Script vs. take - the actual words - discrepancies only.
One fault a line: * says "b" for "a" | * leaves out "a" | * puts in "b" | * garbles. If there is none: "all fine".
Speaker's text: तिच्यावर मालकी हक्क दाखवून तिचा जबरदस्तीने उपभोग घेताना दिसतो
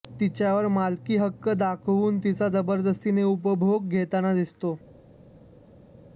all fine